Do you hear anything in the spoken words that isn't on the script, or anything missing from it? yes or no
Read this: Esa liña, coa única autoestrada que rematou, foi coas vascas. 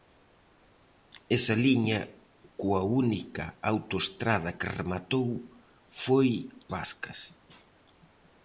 yes